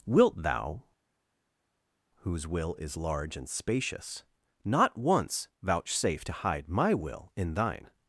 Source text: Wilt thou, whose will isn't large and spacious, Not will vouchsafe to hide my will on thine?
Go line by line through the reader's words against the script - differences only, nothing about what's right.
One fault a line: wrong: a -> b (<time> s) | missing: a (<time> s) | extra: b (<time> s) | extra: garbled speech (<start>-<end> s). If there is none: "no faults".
wrong: isn't -> is (2.7 s)
wrong: will -> once (5.0 s)
wrong: on -> in (7.3 s)